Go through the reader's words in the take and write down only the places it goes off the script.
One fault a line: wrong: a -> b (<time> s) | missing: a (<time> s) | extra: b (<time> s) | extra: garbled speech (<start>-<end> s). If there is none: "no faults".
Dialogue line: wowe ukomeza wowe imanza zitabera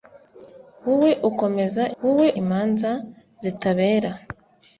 no faults